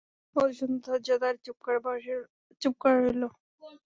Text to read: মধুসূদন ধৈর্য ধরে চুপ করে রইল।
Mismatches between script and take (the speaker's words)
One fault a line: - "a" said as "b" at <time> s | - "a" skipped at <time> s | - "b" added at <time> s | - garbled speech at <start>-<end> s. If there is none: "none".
none